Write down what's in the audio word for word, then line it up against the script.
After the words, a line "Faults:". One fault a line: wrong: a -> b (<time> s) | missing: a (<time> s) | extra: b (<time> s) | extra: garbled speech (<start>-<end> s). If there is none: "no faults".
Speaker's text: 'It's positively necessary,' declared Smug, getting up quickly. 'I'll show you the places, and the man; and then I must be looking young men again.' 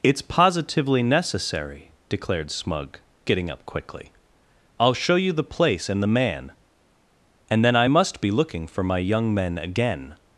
'It's positively necessary,' declared Smug, getting up quickly. 'I'll show you the place, and the man; and then I must be looking for my young men again.'
Faults:
wrong: places -> place (5.4 s)
extra: for my (8.6 s)